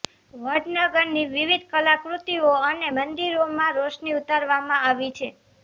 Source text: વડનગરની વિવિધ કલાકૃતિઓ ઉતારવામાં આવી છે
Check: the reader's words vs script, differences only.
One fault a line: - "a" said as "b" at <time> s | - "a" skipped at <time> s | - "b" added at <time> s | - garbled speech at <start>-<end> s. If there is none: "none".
- "અને મંદિરોમાં રોશની" added at 2.6 s